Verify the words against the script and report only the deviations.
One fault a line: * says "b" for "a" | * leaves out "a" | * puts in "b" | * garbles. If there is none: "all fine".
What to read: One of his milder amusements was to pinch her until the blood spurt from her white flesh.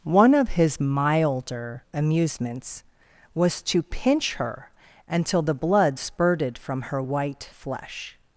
* says "spurted" for "spurt"